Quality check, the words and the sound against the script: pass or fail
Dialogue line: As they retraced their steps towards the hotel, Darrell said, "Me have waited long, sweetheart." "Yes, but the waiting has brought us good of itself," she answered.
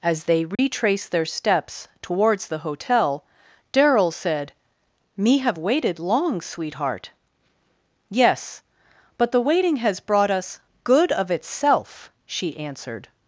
fail